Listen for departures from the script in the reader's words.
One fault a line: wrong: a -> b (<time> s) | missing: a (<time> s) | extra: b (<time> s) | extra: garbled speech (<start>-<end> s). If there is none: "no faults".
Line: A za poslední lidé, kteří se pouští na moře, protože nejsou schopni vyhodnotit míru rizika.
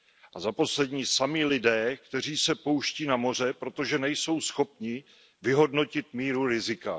extra: sami (1.1 s)